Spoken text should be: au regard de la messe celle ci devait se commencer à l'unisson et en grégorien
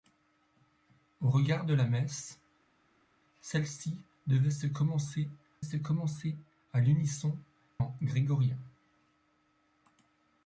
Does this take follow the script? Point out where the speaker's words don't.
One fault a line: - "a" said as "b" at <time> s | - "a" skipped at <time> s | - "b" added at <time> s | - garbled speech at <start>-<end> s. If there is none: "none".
- "se commencer" added at 5.6 s
- "et" skipped at 7.4 s